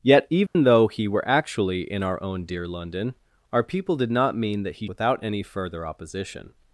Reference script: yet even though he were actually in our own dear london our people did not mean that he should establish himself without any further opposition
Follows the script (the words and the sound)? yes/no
no